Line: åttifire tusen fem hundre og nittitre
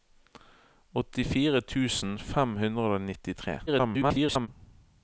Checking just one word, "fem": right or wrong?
right